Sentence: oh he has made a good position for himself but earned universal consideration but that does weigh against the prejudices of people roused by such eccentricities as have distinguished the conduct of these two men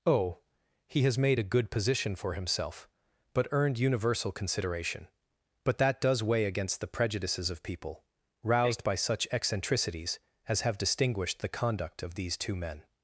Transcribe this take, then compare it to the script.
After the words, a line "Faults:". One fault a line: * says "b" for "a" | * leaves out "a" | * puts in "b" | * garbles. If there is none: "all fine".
oh he has made a good position for himself but earned universal consideration but that does weigh against the prejudices of people roused by such eccentricities as have distinguished the conduct of these two men
Faults:
all fine